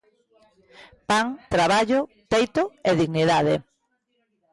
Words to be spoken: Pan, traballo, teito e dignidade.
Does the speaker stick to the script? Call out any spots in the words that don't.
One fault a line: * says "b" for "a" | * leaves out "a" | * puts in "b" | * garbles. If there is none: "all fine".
all fine